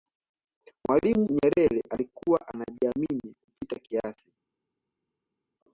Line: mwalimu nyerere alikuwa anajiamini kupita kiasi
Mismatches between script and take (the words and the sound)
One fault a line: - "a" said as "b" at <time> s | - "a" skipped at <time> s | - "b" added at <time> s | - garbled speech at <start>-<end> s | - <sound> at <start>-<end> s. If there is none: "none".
none